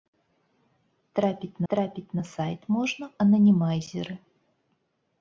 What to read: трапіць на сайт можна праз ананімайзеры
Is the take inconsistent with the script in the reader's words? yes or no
yes